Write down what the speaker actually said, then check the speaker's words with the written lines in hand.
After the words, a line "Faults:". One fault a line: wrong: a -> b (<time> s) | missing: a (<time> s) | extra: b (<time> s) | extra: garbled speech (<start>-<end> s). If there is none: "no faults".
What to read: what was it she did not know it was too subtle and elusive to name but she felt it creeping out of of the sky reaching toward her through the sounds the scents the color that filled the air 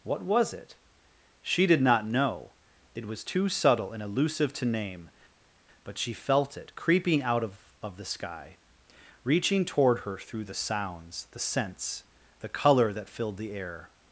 what was it she did not know it was too subtle and elusive to name but she felt it creeping out of of the sky reaching toward her through the sounds the scents the color that filled the air
Faults:
no faults